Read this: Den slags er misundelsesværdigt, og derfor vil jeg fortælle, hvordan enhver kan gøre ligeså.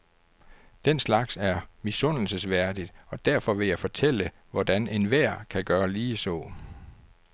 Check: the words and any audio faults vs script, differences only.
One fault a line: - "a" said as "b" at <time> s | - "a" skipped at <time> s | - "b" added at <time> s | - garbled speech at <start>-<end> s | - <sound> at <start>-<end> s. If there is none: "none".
none